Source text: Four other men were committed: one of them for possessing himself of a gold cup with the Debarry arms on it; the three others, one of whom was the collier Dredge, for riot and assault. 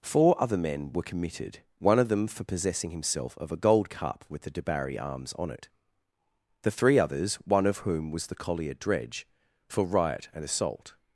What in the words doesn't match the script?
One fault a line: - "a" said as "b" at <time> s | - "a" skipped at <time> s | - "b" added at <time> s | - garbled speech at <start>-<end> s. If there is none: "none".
none